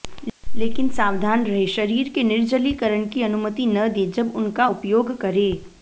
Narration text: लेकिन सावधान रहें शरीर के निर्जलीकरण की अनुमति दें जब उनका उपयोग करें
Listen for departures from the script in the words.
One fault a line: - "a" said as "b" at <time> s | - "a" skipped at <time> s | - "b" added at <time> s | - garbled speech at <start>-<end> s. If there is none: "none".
- "न" added at 3.7 s